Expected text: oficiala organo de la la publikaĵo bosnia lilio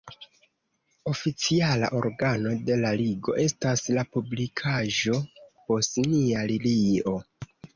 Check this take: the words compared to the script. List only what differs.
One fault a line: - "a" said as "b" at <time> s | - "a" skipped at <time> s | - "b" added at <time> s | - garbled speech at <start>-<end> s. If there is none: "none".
- "ligo estas" added at 3.0 s